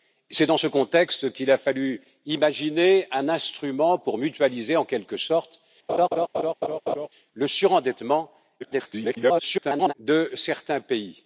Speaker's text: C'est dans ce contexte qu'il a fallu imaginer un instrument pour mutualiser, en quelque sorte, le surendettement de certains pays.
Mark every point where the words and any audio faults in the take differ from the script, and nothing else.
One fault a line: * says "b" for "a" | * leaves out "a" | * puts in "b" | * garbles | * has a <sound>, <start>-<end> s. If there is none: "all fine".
* has a laugh, 5.9-7.1 s
* garbles